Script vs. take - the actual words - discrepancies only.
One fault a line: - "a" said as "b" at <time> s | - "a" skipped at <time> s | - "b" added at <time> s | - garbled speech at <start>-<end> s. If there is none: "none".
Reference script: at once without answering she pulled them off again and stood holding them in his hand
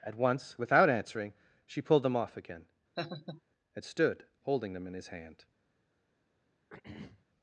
none